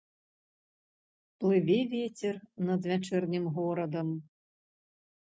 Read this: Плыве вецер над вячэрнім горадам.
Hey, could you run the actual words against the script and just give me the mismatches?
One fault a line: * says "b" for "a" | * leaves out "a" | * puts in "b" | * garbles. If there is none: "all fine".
all fine